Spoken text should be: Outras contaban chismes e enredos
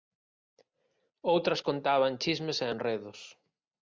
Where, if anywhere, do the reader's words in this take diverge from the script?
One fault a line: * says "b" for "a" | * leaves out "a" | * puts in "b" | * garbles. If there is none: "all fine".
all fine